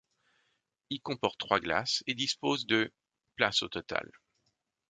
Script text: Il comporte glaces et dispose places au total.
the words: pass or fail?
fail